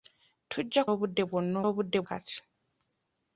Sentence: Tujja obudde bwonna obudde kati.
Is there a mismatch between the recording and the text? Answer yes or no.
no